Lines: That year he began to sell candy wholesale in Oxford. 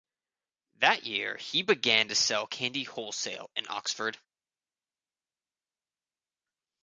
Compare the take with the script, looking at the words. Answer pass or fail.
pass